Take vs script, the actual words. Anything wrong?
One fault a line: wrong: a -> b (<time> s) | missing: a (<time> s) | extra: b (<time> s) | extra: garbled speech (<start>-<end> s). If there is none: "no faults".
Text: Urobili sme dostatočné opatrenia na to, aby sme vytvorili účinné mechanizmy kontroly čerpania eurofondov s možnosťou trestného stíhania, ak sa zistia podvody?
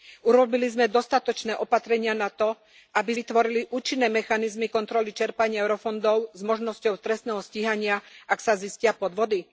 missing: sme (3.1 s)